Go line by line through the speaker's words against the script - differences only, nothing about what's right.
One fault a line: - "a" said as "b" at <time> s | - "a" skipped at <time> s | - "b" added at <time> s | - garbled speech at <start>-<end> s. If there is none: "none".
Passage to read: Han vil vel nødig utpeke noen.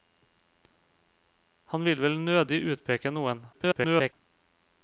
- garbled speech at 3.5-4.1 s